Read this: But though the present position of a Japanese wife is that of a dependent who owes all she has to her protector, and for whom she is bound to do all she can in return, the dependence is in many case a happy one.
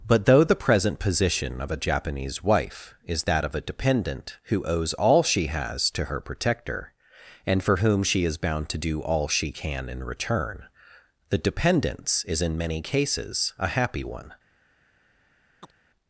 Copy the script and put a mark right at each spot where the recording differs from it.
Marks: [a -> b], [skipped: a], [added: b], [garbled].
But though the present position of a Japanese wife is that of a dependent who owes all she has to her protector, and for whom she is bound to do all she can in return, the dependence is in many [case -> cases] a happy one.